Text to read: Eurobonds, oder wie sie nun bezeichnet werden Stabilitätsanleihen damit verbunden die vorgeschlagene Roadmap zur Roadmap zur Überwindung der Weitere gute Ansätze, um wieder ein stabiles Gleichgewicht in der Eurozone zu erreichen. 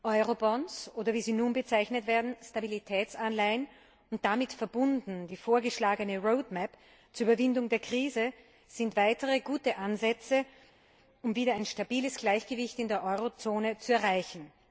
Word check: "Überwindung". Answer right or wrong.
wrong